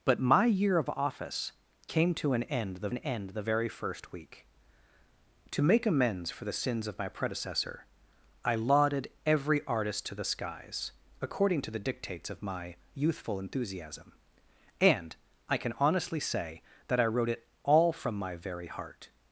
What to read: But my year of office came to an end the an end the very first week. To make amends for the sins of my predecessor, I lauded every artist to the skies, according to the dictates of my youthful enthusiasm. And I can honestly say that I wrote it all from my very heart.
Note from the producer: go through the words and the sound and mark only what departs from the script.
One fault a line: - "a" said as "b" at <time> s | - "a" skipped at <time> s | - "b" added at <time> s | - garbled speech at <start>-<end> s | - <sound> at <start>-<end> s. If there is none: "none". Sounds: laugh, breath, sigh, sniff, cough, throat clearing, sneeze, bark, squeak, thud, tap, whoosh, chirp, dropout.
none